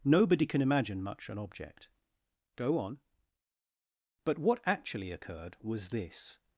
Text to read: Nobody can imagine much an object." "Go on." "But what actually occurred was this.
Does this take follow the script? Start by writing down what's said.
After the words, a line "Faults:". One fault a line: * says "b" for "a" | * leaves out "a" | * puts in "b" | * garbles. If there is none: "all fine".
Nobody can imagine much an object." "Go on." "But what actually occurred was this.
Faults:
all fine